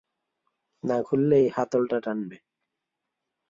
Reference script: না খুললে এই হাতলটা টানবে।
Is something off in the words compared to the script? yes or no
no